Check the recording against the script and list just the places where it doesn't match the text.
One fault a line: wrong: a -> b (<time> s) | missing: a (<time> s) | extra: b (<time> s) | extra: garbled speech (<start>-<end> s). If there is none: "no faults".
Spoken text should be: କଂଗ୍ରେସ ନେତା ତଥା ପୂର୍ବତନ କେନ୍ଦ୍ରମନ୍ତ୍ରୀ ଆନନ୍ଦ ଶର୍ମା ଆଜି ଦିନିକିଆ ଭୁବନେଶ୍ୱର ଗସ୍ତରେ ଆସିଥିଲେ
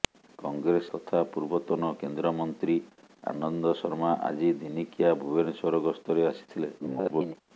missing: ନେତା (0.9 s)
extra: garbled speech (6.8-7.4 s)